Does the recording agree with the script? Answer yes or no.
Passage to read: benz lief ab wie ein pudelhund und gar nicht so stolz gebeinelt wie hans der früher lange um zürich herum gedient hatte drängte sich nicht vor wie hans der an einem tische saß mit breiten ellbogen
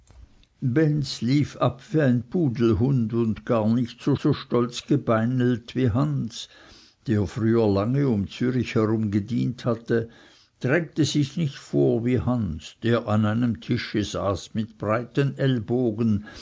no